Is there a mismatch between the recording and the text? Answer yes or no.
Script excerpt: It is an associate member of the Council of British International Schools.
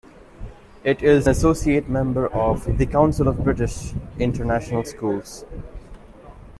yes